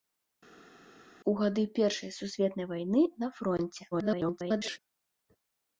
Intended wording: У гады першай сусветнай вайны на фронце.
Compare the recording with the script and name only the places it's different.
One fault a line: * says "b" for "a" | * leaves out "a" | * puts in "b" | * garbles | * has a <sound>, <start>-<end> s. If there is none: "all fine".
* garbles